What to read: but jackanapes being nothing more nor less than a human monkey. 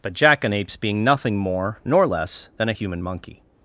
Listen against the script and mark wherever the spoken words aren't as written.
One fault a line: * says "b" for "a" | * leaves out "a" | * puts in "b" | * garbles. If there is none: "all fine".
all fine